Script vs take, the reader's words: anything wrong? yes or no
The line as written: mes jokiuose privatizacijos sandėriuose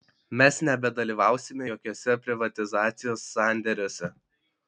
yes